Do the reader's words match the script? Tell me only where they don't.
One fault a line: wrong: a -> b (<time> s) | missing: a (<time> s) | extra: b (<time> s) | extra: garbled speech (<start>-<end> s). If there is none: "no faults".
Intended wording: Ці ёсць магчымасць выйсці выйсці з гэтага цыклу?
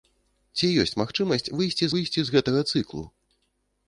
no faults